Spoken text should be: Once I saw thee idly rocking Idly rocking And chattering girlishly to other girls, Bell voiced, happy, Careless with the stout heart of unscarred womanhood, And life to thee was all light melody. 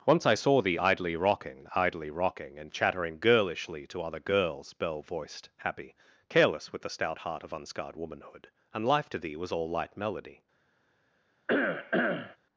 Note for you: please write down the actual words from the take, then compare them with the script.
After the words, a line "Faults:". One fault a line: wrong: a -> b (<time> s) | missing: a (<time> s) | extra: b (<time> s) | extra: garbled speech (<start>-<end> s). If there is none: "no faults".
Once I saw thee idly rocking Idly rocking And chattering girlishly to other girls, Bell voiced, happy, Careless with the stout heart of unscarred womanhood, And life to thee was all light melody.
Faults:
no faults